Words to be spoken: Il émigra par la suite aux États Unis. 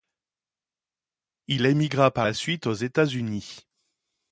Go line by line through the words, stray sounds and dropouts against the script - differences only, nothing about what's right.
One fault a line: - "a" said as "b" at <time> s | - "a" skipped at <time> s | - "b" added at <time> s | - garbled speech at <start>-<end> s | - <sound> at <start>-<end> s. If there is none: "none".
none